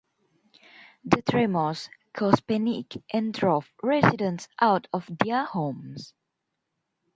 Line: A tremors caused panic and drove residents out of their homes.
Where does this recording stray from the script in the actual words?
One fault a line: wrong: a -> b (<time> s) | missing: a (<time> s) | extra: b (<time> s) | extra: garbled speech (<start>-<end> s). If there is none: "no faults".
wrong: A -> The (1.1 s)